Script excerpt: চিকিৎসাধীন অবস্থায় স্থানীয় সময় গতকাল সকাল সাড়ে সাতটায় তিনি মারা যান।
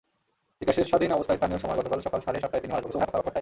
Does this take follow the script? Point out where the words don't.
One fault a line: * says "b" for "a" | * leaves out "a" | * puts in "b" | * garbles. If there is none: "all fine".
* garbles